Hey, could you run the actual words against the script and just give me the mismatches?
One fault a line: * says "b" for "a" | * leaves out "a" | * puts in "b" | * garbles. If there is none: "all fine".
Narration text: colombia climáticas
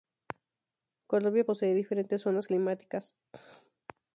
* puts in "posee diferentes zonas"